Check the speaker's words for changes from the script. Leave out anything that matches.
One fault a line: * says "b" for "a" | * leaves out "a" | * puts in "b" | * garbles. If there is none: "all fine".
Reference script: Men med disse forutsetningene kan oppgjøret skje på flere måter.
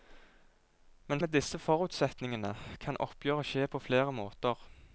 all fine